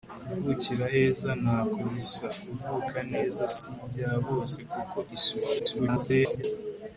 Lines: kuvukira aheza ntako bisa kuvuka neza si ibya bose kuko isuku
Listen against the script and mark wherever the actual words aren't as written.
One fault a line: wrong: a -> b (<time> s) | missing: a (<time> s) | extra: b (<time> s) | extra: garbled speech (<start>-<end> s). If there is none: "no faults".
extra: garbled speech (5.6-6.4 s)